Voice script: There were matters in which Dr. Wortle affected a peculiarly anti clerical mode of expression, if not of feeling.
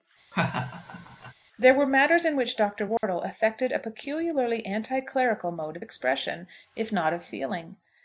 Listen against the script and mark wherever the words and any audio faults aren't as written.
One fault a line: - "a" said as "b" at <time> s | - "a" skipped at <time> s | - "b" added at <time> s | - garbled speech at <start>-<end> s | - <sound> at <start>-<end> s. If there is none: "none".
- laugh at 0.3-1.3 s
- dropout at 3.0-3.0 s